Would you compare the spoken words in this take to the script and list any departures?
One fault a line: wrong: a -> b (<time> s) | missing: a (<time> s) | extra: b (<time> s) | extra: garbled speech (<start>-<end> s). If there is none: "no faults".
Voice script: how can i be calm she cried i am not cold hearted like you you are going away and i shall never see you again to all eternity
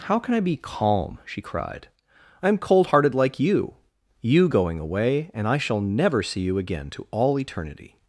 missing: not (2.6 s)
missing: are (4.5 s)